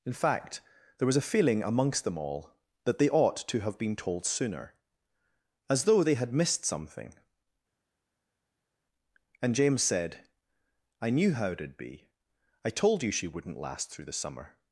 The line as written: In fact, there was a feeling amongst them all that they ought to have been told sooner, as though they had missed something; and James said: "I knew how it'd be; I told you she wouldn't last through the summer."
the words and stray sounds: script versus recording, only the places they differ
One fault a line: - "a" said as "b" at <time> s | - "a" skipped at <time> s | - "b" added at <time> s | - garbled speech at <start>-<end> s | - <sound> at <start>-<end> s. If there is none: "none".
none